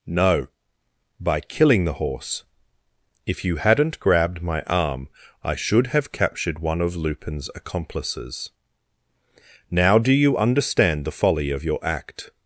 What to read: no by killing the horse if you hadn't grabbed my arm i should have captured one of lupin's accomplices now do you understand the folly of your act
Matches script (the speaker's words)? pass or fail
pass